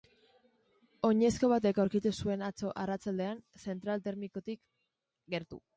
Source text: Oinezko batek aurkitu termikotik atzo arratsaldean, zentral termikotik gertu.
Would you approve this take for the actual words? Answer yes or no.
no